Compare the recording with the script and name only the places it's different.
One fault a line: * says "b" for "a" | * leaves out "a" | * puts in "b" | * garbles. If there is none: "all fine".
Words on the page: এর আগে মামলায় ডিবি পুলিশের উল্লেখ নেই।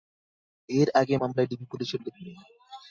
all fine